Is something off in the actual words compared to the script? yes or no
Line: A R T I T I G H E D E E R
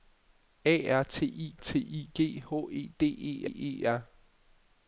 no